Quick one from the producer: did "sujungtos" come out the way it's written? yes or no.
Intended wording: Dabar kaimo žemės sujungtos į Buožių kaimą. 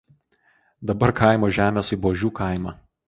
no